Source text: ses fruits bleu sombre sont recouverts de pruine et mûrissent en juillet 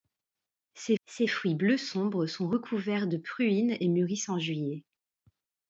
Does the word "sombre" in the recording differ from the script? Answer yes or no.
no